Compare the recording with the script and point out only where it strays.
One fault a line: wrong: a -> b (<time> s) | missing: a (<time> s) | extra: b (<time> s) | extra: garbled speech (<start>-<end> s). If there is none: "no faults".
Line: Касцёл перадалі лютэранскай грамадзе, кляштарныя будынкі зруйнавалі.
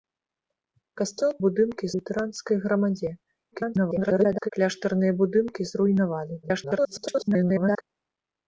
wrong: перадалі -> будынкі (1.4 s)
extra: garbled speech (3.5-4.5 s)
extra: garbled speech (6.4-7.8 s)